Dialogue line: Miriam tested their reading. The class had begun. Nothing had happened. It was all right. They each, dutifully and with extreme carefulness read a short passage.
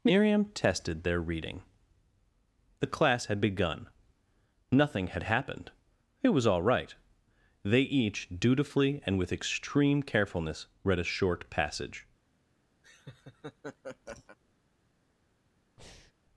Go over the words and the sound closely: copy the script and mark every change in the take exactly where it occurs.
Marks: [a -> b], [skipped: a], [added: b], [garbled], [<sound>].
Miriam tested their reading. The class had begun. Nothing had happened. It was all right. They each, dutifully and with extreme carefulness read a short passage. [laugh] [breath]